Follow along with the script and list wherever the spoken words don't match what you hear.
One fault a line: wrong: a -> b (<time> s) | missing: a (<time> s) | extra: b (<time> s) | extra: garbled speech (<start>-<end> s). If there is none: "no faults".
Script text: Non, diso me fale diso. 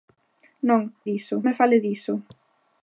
no faults